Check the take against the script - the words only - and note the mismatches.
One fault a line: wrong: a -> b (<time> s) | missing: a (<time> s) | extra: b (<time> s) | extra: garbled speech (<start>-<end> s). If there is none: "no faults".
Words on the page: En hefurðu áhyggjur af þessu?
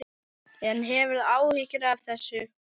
no faults